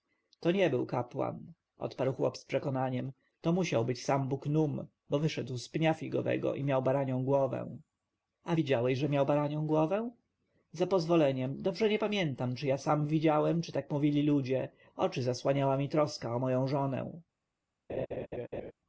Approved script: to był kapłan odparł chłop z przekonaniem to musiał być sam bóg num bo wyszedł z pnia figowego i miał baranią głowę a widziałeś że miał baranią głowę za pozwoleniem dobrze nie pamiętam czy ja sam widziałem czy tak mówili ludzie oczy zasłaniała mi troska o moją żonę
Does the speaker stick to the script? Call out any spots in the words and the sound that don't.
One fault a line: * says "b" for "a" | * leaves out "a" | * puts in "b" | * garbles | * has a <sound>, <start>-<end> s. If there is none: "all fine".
* puts in "nie"
* has a laugh, 17.9-18.7 s